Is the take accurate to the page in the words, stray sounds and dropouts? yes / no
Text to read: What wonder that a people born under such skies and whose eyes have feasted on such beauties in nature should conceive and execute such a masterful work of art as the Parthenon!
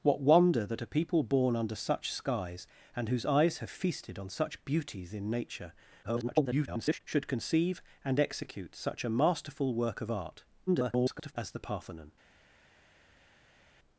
no